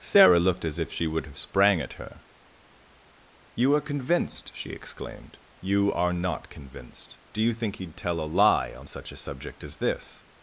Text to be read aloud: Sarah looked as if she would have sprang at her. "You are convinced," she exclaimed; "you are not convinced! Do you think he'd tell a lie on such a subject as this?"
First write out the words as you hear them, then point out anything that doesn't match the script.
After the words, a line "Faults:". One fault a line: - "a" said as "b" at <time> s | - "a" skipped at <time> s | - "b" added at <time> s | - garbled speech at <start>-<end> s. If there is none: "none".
Sarah looked as if she would have sprang at her. "You are convinced," she exclaimed; "you are not convinced! Do you think he'd tell a lie on such a subject as this?"
Faults:
none